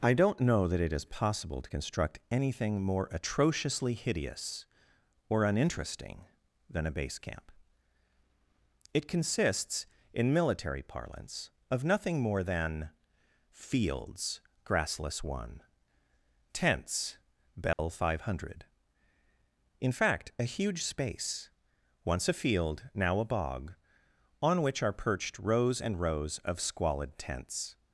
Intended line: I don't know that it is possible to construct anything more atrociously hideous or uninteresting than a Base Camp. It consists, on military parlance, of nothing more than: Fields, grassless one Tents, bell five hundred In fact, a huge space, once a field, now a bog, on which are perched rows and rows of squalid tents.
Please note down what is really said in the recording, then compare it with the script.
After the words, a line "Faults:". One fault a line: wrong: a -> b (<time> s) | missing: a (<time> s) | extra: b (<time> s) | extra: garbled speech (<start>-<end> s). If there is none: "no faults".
I don't know that it is possible to construct anything more atrociously hideous or uninteresting than a Base Camp. It consists, in military parlance, of nothing more than: Fields, grassless one Tents, bell five hundred In fact, a huge space, once a field, now a bog, on which are perched rows and rows of squalid tents.
Faults:
wrong: on -> in (10.1 s)